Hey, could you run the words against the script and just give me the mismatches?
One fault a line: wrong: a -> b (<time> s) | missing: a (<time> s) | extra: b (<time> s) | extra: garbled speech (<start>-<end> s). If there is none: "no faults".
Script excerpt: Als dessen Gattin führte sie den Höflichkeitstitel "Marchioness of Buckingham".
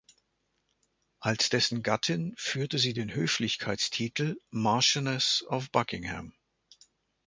no faults